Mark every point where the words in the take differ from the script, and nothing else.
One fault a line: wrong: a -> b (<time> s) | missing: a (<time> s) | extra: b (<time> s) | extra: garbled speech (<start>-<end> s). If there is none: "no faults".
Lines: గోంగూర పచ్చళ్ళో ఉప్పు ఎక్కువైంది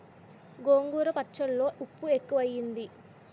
no faults